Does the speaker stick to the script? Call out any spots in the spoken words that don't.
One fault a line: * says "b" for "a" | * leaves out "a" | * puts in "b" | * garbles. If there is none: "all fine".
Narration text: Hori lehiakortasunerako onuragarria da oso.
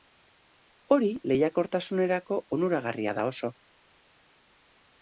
all fine